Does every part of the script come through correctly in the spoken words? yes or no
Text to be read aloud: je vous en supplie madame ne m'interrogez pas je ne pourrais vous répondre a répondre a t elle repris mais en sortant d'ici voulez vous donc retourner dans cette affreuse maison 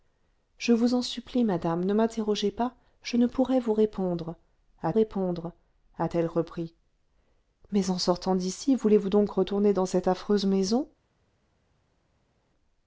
yes